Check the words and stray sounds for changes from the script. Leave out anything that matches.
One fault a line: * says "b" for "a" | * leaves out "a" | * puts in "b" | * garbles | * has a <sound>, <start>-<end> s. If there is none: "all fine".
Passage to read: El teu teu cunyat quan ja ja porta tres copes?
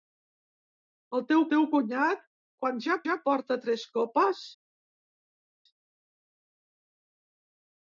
all fine